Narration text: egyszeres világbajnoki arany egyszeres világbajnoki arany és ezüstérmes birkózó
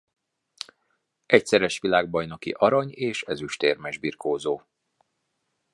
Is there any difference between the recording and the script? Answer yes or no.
yes